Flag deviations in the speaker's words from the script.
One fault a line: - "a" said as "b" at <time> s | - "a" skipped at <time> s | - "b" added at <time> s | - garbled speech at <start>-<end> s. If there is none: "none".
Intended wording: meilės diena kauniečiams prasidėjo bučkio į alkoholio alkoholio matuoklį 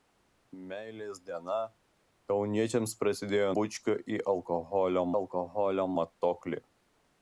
none